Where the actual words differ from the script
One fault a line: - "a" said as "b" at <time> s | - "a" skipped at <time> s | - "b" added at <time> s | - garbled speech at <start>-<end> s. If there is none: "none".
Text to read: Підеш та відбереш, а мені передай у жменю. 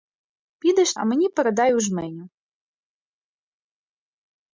- "та відбереш" skipped at 0.9 s